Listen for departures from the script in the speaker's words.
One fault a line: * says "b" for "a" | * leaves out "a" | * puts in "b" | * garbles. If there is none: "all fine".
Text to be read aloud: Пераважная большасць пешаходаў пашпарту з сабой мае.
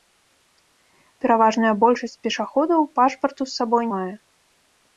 all fine